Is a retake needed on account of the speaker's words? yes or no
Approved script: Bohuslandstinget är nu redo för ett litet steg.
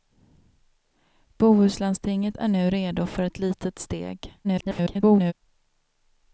yes